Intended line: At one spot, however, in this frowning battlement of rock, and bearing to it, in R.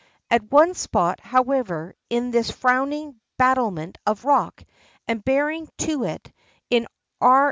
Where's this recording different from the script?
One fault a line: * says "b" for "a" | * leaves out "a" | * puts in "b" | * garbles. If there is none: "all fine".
all fine